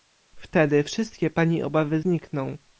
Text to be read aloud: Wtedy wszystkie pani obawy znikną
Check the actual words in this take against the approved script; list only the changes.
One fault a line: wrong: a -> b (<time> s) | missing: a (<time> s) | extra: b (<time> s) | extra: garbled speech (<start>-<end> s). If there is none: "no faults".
no faults